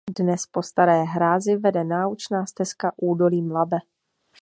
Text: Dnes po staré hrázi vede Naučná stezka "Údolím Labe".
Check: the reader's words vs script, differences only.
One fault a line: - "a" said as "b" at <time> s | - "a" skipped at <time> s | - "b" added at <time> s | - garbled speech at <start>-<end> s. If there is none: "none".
none